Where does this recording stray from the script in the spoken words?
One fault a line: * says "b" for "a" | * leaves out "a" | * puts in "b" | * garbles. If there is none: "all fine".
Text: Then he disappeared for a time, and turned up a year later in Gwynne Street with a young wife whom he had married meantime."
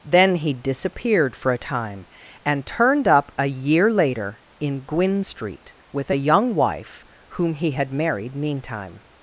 all fine